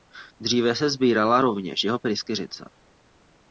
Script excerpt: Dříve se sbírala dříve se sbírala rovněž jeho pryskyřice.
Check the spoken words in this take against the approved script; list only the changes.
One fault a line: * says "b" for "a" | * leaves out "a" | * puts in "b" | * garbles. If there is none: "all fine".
* leaves out "dříve se sbírala"